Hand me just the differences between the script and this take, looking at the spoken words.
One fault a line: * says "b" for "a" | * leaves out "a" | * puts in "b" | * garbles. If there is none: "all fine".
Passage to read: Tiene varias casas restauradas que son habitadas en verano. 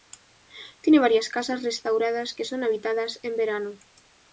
all fine